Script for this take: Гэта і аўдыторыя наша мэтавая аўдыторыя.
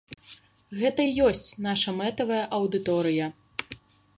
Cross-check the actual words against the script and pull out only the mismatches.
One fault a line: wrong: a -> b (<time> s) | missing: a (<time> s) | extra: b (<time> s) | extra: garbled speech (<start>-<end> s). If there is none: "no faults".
wrong: аўдыторыя -> ёсць (1.3 s)